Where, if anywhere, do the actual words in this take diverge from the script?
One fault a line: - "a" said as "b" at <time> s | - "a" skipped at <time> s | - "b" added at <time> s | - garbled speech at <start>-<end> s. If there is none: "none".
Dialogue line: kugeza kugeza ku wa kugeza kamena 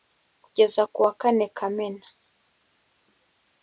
- "kugeza" skipped at 0.8 s
- "kugeza" said as "kane" at 1.2 s